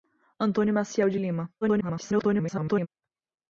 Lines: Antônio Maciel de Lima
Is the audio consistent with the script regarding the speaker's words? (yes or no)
no